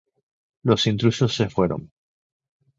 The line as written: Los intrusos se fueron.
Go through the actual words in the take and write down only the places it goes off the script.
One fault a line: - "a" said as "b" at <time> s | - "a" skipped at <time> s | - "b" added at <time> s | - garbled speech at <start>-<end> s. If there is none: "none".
none